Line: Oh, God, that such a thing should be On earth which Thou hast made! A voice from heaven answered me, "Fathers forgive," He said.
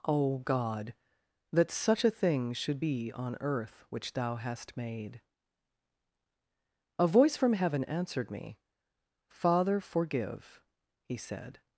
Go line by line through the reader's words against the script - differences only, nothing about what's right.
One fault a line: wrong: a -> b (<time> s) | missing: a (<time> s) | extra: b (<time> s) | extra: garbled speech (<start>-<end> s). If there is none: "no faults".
wrong: Fathers -> Father (9.3 s)